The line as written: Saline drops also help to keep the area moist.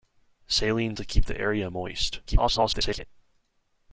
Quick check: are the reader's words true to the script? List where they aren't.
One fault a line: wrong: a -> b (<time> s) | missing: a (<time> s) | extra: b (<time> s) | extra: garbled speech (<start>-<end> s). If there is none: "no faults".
missing: drops also help (0.9 s)
extra: garbled speech (2.3-3.0 s)